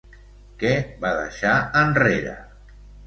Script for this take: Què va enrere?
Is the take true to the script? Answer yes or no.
no